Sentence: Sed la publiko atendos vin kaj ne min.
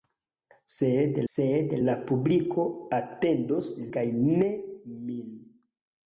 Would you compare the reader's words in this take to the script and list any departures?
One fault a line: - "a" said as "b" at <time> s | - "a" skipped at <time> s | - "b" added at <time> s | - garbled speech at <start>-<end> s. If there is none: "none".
- "sed" added at 1.3 s
- "vin" skipped at 3.7 s